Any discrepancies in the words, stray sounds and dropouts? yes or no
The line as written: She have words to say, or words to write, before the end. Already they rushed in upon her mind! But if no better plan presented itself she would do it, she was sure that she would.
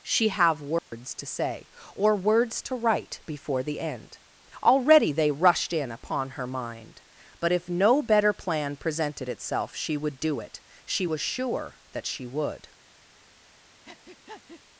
yes